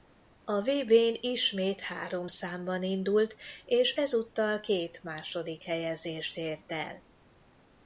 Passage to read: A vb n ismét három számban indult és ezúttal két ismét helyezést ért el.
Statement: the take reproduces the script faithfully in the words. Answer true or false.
false